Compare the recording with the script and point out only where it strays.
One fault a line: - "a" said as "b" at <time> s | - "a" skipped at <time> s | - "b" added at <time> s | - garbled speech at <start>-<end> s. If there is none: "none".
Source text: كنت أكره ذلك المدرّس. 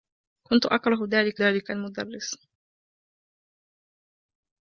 - "ذلك" added at 1.4 s